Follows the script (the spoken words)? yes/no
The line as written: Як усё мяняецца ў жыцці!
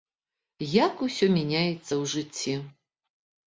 yes